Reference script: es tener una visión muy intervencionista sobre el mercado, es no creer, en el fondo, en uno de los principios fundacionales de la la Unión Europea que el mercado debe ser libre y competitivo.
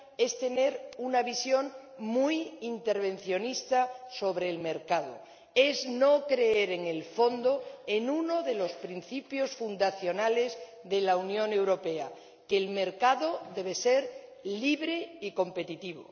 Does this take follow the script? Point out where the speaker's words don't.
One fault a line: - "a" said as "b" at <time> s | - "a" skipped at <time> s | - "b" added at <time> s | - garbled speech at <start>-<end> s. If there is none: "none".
- "la" skipped at 11.2 s